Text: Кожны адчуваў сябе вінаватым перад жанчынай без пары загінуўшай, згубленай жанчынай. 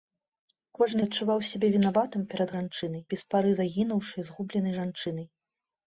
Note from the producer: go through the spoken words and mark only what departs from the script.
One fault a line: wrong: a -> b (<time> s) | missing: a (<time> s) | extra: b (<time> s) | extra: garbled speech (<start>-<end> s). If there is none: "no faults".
no faults